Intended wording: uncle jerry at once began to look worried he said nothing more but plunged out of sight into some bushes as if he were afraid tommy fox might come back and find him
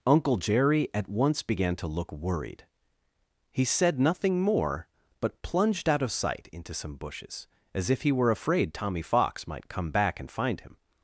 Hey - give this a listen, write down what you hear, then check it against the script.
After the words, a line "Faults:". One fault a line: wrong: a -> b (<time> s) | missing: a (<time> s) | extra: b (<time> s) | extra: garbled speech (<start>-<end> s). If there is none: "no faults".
uncle jerry at once began to look worried he said nothing more but plunged out of sight into some bushes as if he were afraid tommy fox might come back and find him
Faults:
no faults